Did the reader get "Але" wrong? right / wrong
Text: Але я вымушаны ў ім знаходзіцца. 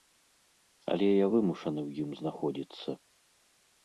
right